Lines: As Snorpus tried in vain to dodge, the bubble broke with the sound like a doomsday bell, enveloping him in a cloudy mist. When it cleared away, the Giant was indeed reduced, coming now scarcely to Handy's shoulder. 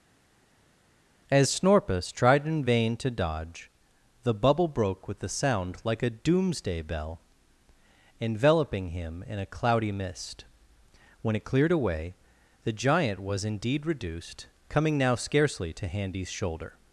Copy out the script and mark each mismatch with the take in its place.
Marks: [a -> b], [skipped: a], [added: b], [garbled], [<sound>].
As Snorpus tried in vain to dodge, the bubble broke with [the -> a] sound like a doomsday bell, enveloping him in a cloudy mist. When it cleared away, the Giant was indeed reduced, coming now scarcely to Handy's shoulder.